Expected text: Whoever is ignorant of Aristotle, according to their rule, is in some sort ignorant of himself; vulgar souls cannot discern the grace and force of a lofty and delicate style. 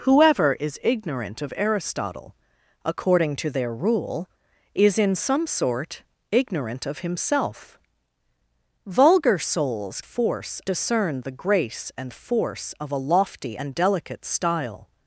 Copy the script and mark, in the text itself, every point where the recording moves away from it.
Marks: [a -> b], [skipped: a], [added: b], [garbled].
Whoever is ignorant of Aristotle, according to their rule, is in some sort ignorant of himself; vulgar souls [cannot -> force] discern the grace and force of a lofty and delicate style.